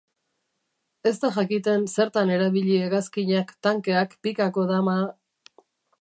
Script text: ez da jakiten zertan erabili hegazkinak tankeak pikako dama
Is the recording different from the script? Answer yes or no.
no